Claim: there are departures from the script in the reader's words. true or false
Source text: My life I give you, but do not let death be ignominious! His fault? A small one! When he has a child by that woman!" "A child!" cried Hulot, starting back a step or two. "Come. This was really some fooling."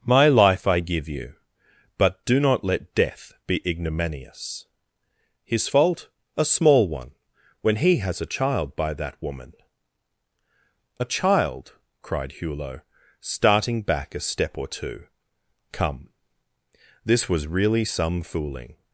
false